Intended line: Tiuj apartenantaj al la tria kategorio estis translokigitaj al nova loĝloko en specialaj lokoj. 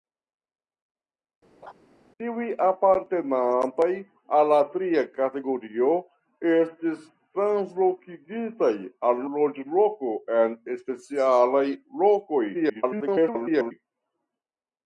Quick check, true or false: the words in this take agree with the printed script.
false